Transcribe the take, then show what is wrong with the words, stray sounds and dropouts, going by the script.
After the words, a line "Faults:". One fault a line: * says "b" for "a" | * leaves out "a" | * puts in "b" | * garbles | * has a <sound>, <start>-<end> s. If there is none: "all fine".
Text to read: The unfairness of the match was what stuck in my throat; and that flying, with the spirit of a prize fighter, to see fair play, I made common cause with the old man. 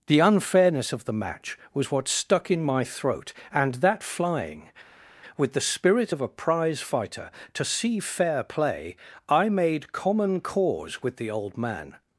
The unfairness of the match was what stuck in my throat; and that flying, with the spirit of a prize fighter, to see fair play, I made common cause with the old man.
Faults:
all fine